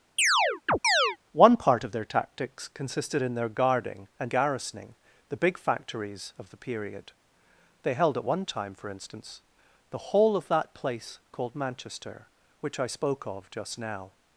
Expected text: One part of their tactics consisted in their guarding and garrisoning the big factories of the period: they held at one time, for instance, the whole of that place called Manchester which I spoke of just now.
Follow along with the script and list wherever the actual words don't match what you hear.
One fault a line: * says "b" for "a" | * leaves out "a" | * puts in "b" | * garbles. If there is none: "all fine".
all fine